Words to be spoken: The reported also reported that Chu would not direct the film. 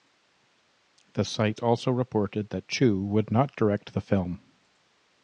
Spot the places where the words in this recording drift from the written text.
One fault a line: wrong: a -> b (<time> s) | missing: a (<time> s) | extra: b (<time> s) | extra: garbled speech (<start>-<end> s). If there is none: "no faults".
wrong: reported -> site (1.2 s)